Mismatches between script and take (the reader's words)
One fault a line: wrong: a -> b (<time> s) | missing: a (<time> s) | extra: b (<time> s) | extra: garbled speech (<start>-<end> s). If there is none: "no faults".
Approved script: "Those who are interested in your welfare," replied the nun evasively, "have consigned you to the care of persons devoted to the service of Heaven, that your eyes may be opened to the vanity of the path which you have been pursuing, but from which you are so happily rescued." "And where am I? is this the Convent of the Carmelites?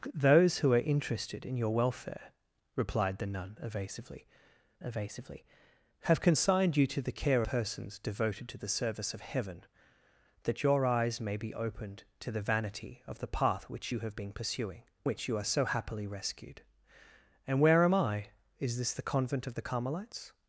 extra: evasively (4.8 s)
missing: of (7.4 s)
missing: but from (14.8 s)